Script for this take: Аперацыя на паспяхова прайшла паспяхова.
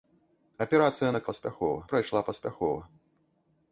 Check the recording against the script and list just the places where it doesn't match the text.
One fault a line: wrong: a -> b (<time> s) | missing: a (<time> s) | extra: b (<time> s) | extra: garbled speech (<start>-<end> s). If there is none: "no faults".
no faults